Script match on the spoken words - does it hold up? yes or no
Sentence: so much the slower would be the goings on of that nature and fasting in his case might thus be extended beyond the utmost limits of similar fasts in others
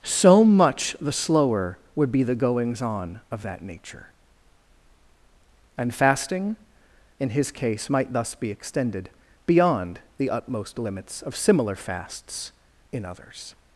yes